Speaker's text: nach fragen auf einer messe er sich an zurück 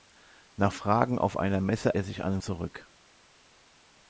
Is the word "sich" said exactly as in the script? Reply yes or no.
yes